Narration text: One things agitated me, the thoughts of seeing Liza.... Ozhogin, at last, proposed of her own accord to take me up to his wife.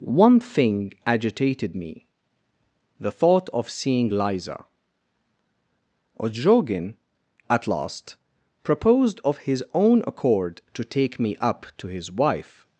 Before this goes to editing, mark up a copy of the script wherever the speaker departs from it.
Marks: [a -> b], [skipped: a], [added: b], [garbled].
One [things -> thing] agitated me, the [thoughts -> thought] of seeing Liza.... Ozhogin, at last, proposed of [her -> his] own accord to take me up to his wife.